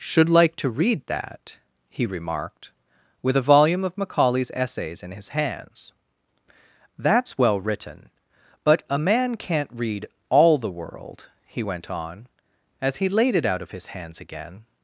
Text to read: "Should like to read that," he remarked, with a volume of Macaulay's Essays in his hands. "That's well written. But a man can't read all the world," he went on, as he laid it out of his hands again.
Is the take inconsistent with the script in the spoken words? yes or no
no